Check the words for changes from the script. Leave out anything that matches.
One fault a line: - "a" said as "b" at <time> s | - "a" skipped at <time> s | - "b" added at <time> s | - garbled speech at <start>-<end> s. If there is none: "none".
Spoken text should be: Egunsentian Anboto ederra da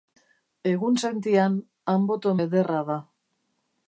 none